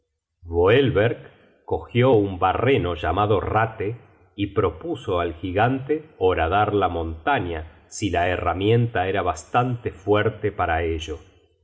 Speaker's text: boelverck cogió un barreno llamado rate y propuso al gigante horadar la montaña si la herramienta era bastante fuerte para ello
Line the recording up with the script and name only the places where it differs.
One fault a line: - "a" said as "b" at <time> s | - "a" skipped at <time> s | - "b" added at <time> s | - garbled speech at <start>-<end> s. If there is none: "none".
none